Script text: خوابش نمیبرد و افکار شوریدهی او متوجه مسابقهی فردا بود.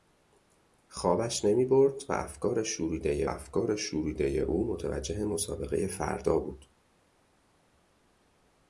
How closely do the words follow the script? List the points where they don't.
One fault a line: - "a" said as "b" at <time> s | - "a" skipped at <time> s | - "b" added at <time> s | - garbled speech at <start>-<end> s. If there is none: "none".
- "افکار شوریدهی" added at 3.2 s